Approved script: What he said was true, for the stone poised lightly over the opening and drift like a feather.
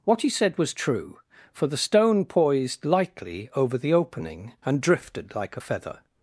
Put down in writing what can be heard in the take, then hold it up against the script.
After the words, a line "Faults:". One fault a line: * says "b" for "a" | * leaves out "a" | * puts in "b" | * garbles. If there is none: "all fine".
What he said was true, for the stone poised lightly over the opening and drifted like a feather.
Faults:
* says "drifted" for "drift"